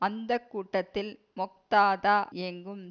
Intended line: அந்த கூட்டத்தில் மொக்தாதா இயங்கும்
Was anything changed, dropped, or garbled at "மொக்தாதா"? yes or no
no